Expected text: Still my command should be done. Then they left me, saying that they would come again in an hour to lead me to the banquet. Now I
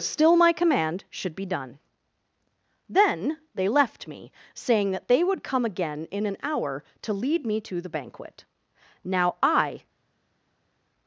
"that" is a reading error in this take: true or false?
false